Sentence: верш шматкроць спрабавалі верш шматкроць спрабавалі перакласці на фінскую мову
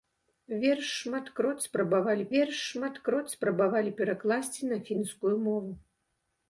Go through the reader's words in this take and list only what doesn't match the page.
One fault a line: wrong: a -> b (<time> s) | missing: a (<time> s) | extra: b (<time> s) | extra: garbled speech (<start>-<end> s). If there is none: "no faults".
no faults